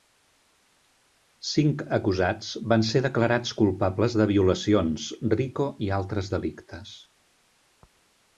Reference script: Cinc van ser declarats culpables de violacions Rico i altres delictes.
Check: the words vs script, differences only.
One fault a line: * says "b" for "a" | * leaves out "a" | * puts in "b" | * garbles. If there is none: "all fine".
* puts in "acusats"